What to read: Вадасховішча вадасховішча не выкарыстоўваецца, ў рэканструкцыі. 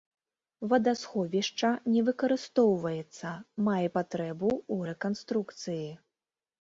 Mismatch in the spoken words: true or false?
true